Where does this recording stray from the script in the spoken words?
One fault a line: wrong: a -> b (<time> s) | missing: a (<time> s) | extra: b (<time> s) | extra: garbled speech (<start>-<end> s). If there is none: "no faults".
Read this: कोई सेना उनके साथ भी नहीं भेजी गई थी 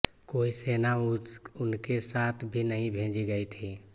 no faults